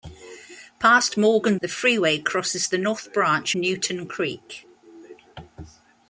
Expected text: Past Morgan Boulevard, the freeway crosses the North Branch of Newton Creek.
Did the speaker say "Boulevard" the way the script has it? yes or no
no